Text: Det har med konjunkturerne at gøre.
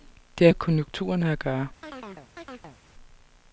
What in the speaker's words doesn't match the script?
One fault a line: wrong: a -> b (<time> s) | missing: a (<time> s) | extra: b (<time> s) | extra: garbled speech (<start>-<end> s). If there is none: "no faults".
no faults